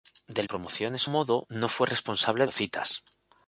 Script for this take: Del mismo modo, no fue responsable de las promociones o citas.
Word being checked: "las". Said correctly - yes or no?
no